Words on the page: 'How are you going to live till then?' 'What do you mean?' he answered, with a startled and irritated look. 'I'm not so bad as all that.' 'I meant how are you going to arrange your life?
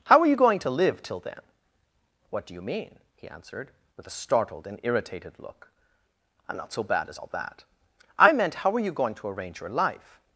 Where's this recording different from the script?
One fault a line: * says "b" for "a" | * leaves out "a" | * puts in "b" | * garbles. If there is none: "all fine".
all fine